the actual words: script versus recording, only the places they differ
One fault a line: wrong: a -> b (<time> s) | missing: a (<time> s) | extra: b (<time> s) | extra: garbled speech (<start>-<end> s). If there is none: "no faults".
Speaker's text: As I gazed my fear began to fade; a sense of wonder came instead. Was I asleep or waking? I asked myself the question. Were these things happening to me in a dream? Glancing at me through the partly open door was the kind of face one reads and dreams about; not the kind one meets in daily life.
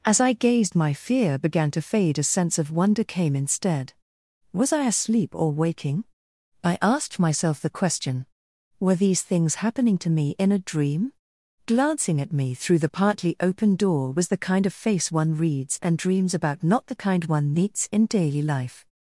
no faults